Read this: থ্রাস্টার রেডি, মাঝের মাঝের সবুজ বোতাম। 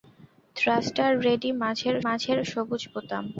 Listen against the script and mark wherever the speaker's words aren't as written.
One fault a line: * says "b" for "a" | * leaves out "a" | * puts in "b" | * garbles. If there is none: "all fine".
all fine